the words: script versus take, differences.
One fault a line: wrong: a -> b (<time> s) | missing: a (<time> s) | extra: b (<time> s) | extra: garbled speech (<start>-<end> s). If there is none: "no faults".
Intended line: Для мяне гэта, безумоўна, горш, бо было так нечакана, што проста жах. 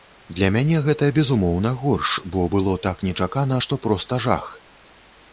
no faults